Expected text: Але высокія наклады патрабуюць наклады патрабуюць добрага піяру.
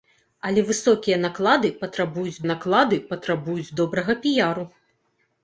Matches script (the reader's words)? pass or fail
pass